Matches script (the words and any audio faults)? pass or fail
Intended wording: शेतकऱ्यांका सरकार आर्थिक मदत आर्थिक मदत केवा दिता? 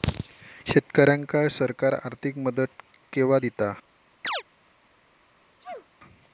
fail